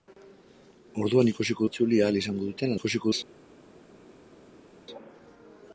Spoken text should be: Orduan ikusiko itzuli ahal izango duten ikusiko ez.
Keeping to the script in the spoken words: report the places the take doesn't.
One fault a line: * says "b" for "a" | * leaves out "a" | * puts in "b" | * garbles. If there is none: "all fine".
all fine